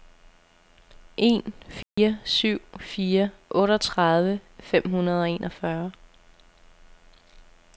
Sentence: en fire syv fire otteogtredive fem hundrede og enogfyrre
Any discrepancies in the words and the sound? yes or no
yes